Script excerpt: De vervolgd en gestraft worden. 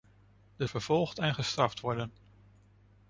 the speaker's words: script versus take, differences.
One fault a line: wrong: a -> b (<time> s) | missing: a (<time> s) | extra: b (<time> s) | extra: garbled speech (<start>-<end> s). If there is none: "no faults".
no faults